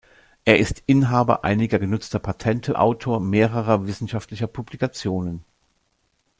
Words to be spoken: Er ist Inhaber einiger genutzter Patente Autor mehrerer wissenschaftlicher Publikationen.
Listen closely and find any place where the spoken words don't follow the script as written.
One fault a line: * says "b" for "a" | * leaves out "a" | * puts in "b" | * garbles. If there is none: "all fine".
all fine